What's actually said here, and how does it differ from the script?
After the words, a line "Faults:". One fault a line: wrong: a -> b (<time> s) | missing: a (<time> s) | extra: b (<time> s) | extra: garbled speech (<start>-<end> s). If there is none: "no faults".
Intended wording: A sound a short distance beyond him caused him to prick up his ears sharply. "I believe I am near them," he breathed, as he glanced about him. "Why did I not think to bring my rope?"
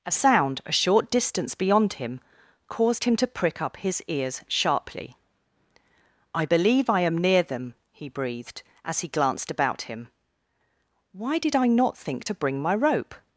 A sound a short distance beyond him caused him to prick up his ears sharply. "I believe I am near them," he breathed, as he glanced about him. "Why did I not think to bring my rope?"
Faults:
no faults